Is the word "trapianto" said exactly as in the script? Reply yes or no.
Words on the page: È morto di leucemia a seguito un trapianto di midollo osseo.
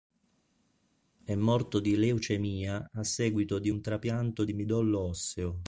yes